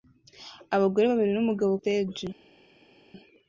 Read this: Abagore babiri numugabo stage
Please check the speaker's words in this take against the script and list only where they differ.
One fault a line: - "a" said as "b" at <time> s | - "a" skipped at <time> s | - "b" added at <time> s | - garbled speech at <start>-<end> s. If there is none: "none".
none